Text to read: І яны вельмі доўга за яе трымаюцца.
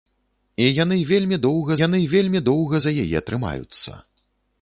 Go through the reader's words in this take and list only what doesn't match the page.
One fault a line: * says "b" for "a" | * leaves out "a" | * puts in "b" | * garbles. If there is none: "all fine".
* puts in "яны вельмі доўга"